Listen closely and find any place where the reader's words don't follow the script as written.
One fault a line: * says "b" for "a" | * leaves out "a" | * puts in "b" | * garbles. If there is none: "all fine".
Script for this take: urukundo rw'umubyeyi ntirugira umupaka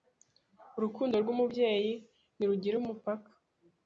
all fine